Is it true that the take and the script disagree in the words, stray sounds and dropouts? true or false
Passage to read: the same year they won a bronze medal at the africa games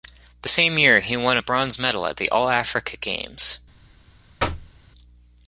true